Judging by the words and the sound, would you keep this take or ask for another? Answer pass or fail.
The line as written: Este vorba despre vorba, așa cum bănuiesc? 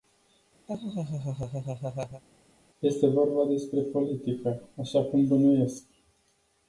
fail